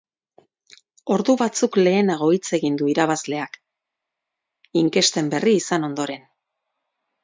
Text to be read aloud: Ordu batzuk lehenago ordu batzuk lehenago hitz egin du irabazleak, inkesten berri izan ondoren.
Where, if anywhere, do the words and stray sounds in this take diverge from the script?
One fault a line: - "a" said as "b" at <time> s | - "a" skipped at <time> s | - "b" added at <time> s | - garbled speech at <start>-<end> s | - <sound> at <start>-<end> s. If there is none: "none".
- "ordu batzuk lehenago" skipped at 2.3 s